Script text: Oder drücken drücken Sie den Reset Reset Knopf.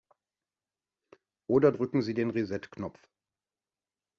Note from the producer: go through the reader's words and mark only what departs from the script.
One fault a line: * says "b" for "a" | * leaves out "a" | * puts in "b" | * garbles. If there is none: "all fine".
* leaves out "drücken"
* leaves out "Reset"